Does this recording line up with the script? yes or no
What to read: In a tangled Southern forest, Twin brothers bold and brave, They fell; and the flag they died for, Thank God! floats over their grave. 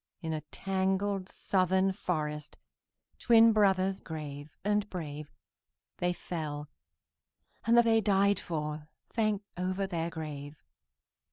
no